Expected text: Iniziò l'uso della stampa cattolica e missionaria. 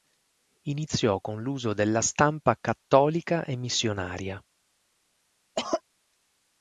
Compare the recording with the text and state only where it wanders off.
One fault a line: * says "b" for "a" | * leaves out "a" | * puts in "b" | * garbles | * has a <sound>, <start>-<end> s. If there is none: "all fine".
* puts in "con"
* has a cough, 5.5-5.8 s